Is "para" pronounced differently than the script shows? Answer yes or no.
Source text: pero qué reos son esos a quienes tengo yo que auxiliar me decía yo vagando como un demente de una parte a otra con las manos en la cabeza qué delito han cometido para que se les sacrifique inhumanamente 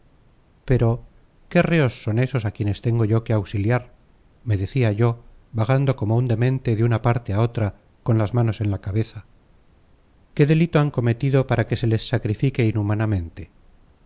no